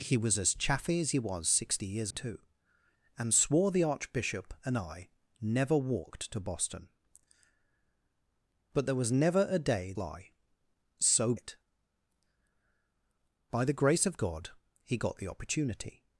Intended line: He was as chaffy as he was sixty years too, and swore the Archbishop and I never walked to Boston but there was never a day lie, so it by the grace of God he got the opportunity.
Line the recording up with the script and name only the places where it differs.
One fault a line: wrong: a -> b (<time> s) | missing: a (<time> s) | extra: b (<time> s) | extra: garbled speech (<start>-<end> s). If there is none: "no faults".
no faults